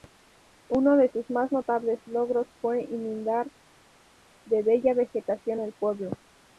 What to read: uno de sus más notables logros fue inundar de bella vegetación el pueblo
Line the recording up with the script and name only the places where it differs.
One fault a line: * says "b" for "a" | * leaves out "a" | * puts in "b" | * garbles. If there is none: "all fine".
all fine